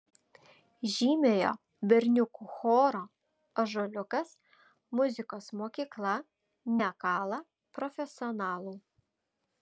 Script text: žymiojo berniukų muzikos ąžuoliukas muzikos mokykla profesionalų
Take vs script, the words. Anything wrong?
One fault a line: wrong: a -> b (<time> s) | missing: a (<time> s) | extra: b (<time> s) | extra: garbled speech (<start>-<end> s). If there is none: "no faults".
wrong: muzikos -> choro (2.5 s)
extra: nekala (6.8 s)